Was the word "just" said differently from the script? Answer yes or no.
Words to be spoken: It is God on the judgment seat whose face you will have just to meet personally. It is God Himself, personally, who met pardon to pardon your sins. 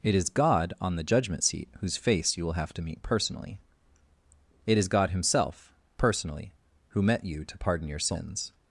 yes